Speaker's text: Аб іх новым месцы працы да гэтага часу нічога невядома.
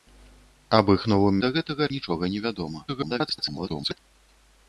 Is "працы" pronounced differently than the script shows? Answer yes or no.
yes